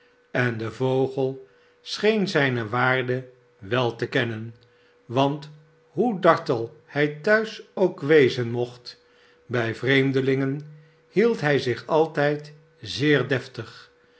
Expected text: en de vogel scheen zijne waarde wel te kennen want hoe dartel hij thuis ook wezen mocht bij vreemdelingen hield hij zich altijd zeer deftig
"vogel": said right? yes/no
yes